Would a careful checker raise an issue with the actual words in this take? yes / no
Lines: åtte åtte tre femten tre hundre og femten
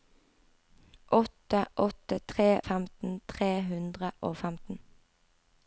no